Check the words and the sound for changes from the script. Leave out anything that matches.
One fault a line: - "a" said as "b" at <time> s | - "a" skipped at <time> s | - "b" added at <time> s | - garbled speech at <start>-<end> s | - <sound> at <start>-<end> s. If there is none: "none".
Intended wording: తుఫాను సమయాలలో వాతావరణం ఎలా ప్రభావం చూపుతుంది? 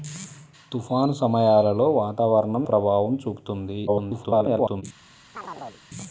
- "ఎలా" skipped at 2.7 s
- garbled speech at 3.9-4.8 s
- chirp at 5.3-5.8 s